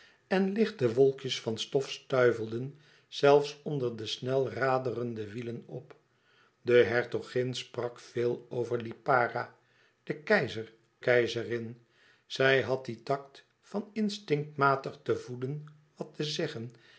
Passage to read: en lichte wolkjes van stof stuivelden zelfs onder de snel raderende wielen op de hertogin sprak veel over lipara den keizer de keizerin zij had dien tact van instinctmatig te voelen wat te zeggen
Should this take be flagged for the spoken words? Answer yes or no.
yes